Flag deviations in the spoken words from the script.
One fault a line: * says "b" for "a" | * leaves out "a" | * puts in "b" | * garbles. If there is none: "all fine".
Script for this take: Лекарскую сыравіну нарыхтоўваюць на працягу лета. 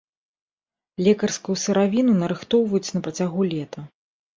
all fine